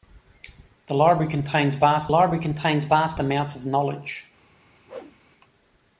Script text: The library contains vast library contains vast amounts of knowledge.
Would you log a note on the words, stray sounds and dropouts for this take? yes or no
yes